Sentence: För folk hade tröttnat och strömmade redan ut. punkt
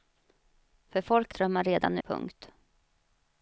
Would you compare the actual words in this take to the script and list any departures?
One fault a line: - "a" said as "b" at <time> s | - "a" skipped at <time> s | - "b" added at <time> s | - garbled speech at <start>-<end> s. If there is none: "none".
- "hade tröttnat och" skipped at 1.3 s
- "ut" skipped at 2.0 s